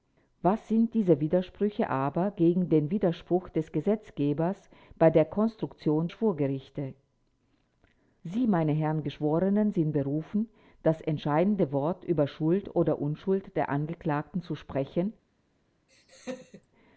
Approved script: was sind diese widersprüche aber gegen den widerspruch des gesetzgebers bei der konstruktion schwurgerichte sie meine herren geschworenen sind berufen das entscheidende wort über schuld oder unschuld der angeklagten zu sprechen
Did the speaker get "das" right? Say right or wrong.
right